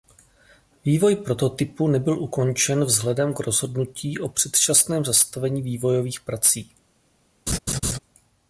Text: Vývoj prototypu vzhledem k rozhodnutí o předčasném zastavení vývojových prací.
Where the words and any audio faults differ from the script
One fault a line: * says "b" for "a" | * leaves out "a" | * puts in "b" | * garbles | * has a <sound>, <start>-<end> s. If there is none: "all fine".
* puts in "nebyl ukončen"
* has a laugh, 7.5-8.0 s